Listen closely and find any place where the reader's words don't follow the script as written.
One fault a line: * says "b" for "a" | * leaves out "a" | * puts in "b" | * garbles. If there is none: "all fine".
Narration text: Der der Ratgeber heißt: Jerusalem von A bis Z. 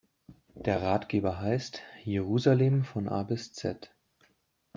* leaves out "der"